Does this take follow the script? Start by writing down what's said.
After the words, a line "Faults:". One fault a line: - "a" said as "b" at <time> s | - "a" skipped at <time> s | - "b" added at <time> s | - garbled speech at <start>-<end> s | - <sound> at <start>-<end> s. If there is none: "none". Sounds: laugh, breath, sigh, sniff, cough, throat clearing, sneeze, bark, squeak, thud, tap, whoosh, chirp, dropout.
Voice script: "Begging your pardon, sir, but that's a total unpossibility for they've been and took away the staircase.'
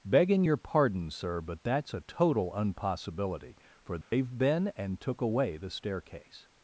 "Begging your pardon, sir, but that's a total unpossibility for they've been and took away the staircase.'
Faults:
- dropout at 4.0-4.1 s